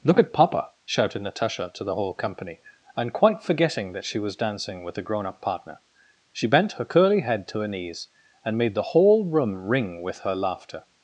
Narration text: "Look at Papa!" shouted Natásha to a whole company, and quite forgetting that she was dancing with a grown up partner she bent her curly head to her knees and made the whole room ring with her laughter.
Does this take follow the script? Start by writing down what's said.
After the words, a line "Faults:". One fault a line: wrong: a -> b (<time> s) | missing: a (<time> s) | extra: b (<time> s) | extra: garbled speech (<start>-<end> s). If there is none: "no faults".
"Look at Papa!" shouted Natásha to the whole company, and quite forgetting that she was dancing with a grown up partner she bent her curly head to her knees and made the whole room ring with her laughter.
Faults:
wrong: a -> the (1.8 s)